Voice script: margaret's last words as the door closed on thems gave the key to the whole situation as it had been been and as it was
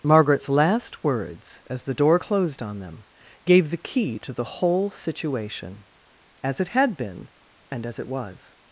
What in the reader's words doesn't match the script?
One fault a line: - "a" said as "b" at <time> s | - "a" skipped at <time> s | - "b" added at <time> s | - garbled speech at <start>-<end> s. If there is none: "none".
- "thems" said as "them" at 2.8 s
- "been" skipped at 7.3 s